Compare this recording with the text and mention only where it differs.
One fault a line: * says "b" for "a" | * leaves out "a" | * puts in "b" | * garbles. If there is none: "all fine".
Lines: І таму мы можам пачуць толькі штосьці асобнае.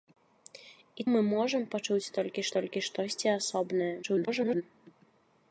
* leaves out "таму"
* puts in "толькі"
* garbles